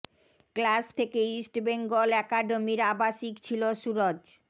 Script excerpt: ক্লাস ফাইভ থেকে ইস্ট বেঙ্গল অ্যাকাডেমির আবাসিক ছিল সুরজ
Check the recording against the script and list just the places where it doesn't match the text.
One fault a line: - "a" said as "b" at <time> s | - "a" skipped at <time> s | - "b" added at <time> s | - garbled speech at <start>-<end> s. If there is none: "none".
- "ফাইভ" skipped at 0.8 s